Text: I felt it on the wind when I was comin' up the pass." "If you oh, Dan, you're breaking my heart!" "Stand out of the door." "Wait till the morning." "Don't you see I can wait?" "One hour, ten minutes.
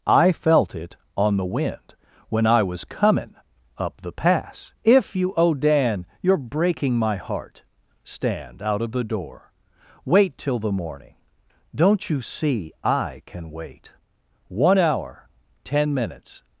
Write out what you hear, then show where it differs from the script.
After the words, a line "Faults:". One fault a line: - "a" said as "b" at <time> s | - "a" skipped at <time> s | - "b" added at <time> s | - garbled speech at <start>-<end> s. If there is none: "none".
I felt it on the wind when I was comin' up the pass." "If you oh, Dan, you're breaking my heart!" "Stand out of the door." "Wait till the morning." "Don't you see I can wait?" "One hour, ten minutes.
Faults:
none